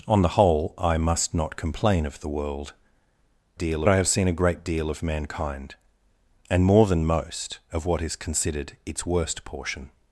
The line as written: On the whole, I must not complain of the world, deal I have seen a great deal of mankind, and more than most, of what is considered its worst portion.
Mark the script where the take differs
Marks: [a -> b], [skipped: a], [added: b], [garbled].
On the whole, I must not complain of the world, deal I have seen a great deal of mankind, and more than most, of what is considered its worst portion.